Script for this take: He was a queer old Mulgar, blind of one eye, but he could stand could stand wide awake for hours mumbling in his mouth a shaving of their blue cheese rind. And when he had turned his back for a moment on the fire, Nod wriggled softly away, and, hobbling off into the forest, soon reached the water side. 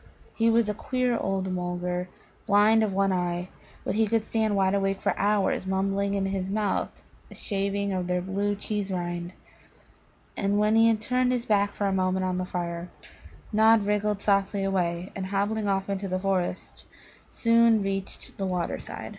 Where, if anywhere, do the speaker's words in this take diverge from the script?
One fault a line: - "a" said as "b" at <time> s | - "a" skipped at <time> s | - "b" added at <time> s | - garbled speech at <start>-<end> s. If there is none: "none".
- "could stand" skipped at 4.5 s